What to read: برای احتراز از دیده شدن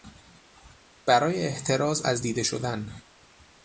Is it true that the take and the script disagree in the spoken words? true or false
false